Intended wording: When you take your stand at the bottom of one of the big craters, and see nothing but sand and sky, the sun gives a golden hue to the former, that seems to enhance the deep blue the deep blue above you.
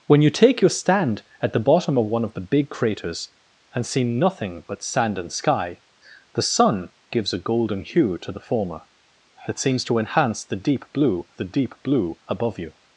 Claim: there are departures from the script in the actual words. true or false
false